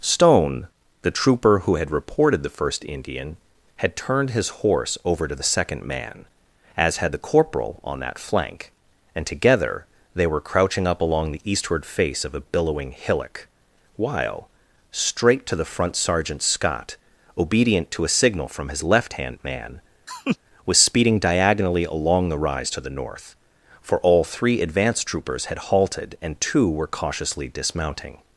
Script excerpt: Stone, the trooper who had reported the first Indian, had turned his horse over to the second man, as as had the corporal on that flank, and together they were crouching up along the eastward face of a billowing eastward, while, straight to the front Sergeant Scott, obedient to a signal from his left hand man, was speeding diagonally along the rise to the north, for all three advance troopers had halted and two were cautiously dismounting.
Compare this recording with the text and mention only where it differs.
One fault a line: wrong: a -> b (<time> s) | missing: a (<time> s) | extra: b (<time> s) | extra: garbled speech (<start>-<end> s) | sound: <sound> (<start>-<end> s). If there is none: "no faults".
missing: as (7.0 s)
wrong: eastward -> hillock (12.9 s)
sound: laugh (20.1-20.4 s)